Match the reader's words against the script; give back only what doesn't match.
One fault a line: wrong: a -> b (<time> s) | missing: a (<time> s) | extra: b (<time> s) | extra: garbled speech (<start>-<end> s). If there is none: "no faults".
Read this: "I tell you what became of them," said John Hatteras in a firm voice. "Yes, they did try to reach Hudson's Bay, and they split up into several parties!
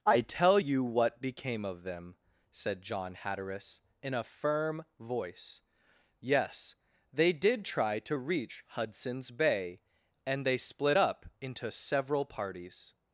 no faults